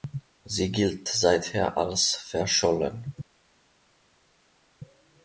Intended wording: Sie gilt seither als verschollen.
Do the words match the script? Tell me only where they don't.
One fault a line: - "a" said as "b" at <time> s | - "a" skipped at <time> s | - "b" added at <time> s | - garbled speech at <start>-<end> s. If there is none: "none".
none